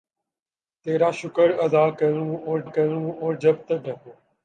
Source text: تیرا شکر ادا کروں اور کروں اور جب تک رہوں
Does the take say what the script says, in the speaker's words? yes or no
yes